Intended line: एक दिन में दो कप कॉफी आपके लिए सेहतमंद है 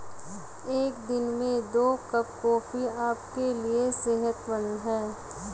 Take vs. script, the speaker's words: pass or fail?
pass